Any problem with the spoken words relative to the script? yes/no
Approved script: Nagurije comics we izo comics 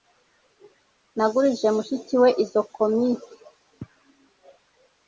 yes